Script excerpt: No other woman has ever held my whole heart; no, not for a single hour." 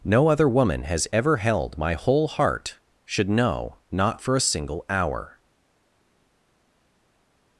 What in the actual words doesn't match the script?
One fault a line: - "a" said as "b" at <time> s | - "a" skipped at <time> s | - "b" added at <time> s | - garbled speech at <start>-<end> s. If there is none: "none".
- "no" said as "should know" at 3.0 s